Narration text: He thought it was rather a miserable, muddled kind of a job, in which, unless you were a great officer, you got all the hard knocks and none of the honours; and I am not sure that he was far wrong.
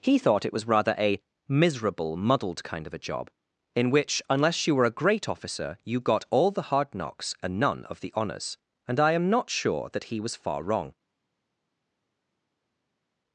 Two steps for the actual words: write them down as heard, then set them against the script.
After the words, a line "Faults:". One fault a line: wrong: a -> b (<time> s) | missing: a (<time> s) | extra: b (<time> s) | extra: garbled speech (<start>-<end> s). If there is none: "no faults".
He thought it was rather a miserable, muddled kind of a job, in which, unless you were a great officer, you got all the hard knocks and none of the honours; and I am not sure that he was far wrong.
Faults:
no faults